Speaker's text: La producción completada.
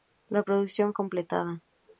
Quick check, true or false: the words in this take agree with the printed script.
true